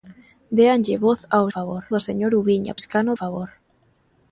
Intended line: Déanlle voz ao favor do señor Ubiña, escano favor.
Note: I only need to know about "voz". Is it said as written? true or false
true